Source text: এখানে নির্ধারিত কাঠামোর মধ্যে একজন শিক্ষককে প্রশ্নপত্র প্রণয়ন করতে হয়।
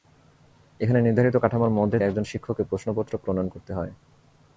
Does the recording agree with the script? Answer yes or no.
yes